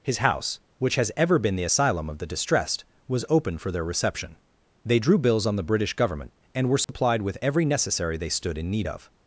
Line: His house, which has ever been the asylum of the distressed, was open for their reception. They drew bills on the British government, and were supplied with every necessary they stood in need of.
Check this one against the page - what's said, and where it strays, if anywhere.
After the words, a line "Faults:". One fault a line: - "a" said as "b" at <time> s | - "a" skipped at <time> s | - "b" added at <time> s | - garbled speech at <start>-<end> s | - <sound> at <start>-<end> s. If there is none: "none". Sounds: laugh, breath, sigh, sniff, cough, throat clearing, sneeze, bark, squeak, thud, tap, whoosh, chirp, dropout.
His house, which has ever been the asylum of the distressed, was open for their reception. They drew bills on the British government, and were supplied with every necessary they stood in need of.
Faults:
- dropout at 6.8-6.9 s